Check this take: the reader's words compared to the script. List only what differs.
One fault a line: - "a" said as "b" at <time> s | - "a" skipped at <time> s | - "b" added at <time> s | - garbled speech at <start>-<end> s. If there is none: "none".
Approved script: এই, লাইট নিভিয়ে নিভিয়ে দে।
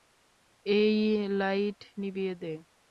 - "নিভিয়ে" skipped at 2.3 s